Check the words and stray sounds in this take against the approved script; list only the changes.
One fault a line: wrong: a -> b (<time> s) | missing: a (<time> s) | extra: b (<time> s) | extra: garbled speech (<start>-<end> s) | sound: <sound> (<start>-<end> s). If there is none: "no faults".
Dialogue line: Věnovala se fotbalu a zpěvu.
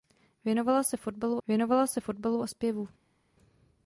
extra: věnovala se fotbalu (1.5 s)